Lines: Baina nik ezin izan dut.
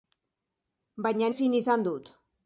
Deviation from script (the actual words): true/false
true